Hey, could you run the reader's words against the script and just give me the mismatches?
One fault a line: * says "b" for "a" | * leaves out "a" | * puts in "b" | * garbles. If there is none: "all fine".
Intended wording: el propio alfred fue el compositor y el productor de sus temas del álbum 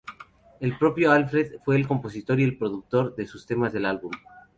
all fine